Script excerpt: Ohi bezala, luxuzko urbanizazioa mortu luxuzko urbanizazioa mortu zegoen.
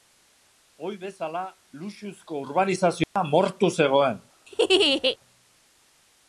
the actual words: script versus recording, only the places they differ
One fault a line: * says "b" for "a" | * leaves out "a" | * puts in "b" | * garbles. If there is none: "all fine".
* leaves out "luxuzko urbanizazioa mortu"